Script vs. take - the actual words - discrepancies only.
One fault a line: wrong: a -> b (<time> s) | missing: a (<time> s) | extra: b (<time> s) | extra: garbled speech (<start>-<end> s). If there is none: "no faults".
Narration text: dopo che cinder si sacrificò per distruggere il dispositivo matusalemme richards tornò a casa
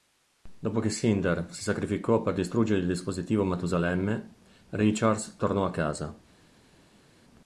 no faults